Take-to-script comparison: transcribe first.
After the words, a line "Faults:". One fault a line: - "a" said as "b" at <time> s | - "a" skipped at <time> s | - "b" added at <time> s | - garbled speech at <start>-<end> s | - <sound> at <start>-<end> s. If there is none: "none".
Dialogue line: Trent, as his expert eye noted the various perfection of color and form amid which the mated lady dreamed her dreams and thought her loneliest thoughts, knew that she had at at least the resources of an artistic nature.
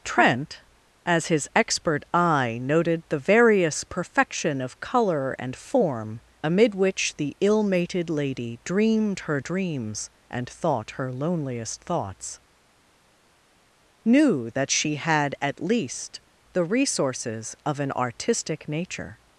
Trent, as his expert eye noted the various perfection of color and form amid which the ill mated lady dreamed her dreams and thought her loneliest thoughts, knew that she had at least the resources of an artistic nature.
Faults:
- "ill" added at 7.4 s
- "at" skipped at 15.6 s